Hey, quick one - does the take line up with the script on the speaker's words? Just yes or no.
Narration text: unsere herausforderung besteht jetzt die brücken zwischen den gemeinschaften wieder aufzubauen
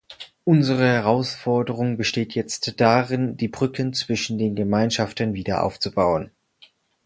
no